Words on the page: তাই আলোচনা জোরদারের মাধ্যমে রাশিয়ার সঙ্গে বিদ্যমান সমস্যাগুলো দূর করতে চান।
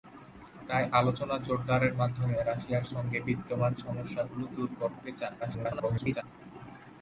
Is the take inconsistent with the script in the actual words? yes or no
yes